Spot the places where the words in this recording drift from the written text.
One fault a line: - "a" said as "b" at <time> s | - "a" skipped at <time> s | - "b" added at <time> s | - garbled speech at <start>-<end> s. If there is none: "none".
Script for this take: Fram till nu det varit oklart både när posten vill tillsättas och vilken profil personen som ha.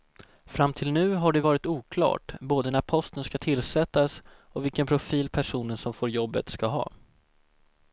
- "har" added at 1.1 s
- "vill" said as "ska" at 3.2 s
- "får jobbet ska" added at 5.9 s